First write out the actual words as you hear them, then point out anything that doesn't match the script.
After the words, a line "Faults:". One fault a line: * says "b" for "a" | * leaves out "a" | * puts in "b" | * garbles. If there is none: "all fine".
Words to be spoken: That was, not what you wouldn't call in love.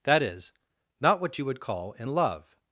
That is, not what you would call in love.
Faults:
* says "is" for "was"
* says "would" for "wouldn't"